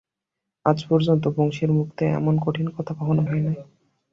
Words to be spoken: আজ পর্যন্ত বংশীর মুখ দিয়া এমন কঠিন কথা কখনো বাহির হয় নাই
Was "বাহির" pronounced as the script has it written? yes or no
no